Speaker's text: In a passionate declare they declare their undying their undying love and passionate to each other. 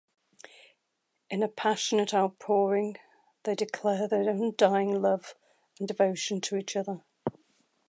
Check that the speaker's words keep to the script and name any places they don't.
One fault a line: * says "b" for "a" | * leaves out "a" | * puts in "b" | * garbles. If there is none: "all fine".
* says "outpouring" for "declare"
* leaves out "their undying"
* says "devotion" for "passionate"